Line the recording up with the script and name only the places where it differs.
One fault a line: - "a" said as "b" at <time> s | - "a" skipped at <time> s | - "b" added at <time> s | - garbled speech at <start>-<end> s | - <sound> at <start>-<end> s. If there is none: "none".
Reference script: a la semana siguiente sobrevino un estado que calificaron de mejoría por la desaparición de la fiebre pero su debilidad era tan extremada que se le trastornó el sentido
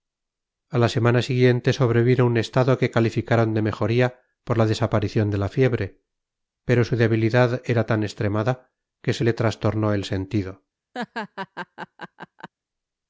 - laugh at 10.9-12.5 s